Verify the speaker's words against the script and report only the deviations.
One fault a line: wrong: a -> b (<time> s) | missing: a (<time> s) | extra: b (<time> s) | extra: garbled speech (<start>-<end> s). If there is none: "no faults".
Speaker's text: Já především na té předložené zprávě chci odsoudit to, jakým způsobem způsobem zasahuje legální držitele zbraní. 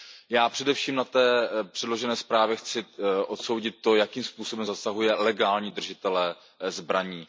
missing: způsobem (4.7 s)